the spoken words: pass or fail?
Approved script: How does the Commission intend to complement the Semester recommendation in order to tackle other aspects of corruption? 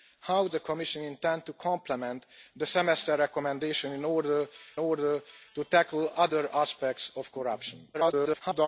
fail